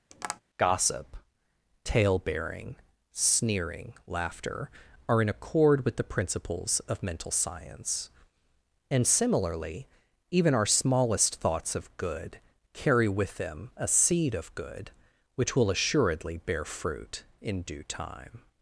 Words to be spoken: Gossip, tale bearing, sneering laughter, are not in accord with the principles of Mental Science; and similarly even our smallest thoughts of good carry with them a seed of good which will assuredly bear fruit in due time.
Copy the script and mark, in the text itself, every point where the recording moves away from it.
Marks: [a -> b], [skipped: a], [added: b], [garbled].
Gossip, tale bearing, sneering laughter, are [skipped: not] in accord with the principles of Mental Science; and similarly even our smallest thoughts of good carry with them a seed of good which will assuredly bear fruit in due time.